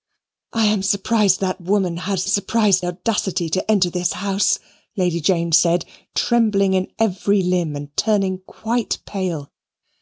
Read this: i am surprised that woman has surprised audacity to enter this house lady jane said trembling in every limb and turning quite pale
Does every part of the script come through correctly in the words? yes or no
yes